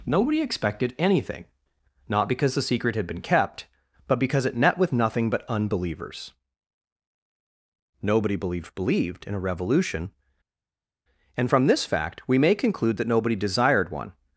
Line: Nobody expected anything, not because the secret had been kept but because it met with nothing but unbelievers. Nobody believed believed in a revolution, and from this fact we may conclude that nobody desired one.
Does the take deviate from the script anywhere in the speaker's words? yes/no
no